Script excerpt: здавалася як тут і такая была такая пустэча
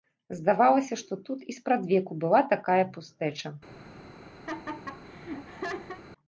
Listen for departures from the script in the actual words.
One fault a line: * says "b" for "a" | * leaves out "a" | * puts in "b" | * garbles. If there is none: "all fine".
* says "што" for "як"
* says "спрадвеку" for "такая"